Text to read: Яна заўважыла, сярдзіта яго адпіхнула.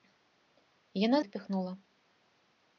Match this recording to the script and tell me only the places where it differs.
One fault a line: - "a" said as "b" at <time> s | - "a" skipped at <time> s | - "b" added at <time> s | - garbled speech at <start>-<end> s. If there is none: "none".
- "заўважыла сярдзіта яго" skipped at 1.2 s